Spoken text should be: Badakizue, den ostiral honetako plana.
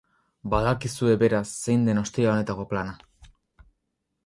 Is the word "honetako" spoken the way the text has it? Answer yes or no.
yes